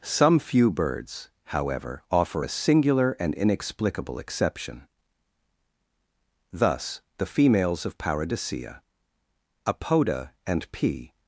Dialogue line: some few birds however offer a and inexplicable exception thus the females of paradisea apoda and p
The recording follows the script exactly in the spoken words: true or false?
false